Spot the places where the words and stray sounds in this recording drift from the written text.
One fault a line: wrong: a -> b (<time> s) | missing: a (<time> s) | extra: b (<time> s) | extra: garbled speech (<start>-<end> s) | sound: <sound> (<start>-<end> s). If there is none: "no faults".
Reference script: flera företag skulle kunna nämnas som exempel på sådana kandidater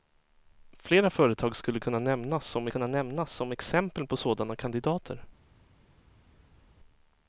extra: kunna nämnas som (2.7 s)